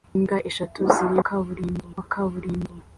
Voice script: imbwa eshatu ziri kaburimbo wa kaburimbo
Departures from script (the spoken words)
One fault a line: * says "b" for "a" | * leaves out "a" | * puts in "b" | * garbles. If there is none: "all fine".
all fine